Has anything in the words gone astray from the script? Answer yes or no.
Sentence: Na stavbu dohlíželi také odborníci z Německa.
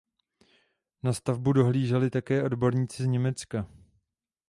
no